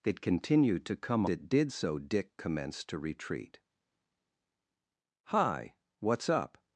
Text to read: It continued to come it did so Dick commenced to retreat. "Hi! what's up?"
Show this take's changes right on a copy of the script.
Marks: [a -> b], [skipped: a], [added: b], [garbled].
It continued to come it did so Dick commenced to retreat. "Hi! what's up?"